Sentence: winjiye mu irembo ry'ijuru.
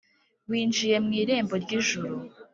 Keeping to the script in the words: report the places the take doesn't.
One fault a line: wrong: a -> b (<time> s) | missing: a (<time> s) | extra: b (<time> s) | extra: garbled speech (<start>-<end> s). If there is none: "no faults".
no faults